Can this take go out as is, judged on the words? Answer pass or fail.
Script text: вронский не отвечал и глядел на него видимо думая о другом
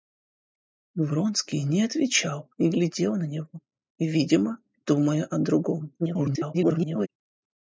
fail